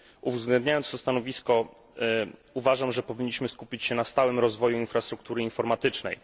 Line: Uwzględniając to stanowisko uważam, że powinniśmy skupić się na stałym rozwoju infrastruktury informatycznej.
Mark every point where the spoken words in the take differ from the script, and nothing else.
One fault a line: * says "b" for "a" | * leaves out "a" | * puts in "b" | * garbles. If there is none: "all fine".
all fine